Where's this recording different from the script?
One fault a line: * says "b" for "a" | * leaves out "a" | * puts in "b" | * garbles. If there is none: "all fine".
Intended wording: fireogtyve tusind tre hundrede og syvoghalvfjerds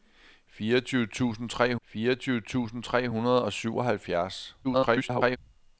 * puts in "fireogtyve tusind tre"
* garbles